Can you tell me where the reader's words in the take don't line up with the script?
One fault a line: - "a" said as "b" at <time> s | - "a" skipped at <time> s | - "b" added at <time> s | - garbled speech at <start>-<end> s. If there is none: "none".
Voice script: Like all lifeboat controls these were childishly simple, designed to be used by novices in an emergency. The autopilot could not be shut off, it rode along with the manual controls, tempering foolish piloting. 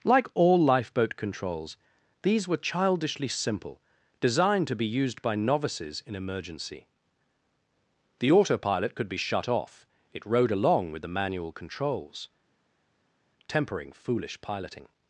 - "an" skipped at 6.2 s
- "not" skipped at 9.1 s